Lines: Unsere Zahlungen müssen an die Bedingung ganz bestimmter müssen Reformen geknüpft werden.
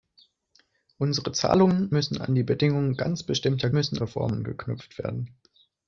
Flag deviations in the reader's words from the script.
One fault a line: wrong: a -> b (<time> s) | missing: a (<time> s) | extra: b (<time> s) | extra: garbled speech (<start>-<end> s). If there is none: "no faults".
no faults